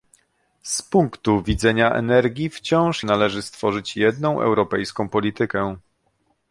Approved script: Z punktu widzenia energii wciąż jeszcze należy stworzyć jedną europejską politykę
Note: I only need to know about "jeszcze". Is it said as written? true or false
false